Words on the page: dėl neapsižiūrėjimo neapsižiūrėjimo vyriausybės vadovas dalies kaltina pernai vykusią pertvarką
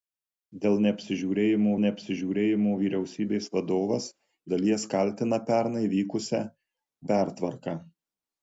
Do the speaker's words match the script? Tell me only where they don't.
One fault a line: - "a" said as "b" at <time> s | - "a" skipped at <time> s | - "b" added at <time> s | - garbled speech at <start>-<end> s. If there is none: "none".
none